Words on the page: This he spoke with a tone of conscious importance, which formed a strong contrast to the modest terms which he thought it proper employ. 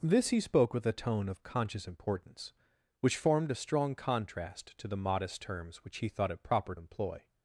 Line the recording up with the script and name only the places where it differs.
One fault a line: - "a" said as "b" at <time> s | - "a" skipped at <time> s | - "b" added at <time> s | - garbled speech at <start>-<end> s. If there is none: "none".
none